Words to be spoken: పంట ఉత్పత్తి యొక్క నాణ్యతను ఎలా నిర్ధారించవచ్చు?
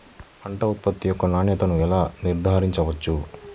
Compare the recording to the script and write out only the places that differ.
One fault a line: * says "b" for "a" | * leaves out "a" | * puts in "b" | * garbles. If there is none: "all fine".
all fine